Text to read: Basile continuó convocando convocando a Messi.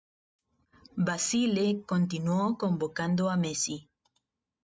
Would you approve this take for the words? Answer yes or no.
no